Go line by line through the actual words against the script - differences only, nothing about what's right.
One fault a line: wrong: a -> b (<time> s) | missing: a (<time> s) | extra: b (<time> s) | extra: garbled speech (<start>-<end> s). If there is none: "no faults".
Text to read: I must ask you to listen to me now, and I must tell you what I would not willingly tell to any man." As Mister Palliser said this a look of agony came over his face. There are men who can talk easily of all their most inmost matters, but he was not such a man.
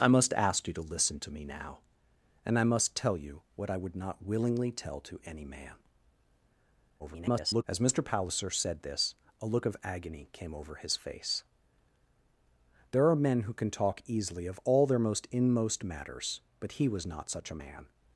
extra: garbled speech (7.0-7.6 s)